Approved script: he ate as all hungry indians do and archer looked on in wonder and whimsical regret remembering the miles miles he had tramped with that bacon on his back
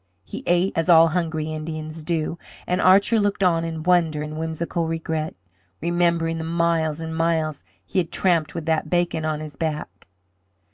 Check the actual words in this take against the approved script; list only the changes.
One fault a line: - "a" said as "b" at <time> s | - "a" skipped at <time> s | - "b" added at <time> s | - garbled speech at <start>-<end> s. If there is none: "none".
- "and" added at 7.0 s